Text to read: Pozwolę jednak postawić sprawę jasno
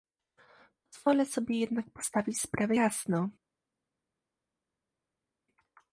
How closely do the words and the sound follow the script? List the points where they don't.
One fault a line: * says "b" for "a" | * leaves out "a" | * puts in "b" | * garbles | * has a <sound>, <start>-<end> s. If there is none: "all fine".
* puts in "sobie"